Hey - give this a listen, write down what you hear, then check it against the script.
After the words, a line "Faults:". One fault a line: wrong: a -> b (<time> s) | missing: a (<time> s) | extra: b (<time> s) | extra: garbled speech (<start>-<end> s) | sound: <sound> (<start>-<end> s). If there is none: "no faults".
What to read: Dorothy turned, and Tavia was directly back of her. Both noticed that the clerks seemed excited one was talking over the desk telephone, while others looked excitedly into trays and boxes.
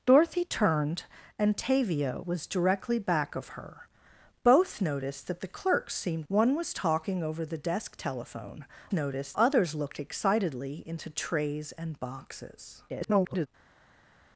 Dorothy turned, and Tavia was directly back of her. Both noticed that the clerks seemed one was talking over the desk telephone, noticed others looked excitedly into trays and boxes. [garbled]
Faults:
missing: excited (6.3 s)
wrong: while -> noticed (8.9 s)
extra: garbled speech (12.9-13.5 s)